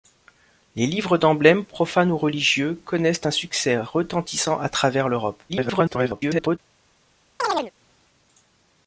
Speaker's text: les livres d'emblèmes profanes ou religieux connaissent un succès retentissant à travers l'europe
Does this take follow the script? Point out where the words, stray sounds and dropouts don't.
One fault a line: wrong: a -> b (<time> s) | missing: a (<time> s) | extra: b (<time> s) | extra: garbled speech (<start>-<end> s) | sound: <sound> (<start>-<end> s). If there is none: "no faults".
extra: garbled speech (5.5-6.6 s)
sound: chirp (7.4-7.7 s)